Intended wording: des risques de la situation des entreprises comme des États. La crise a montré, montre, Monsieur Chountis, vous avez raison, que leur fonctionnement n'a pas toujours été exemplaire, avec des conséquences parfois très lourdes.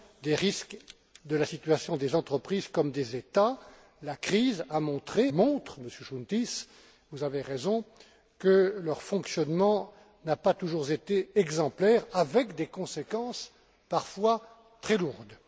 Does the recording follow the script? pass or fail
pass